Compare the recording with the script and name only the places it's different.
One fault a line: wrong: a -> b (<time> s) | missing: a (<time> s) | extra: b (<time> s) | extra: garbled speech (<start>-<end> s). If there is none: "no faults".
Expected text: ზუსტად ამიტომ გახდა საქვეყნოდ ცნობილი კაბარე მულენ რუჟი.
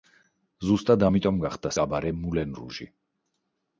missing: საქვეყნოდ ცნობილი (1.7 s)